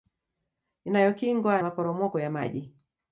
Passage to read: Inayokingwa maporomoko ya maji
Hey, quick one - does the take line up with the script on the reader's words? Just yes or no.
yes